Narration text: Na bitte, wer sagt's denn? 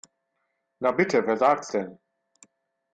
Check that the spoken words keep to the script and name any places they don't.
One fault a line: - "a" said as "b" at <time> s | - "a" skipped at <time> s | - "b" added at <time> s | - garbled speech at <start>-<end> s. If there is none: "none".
none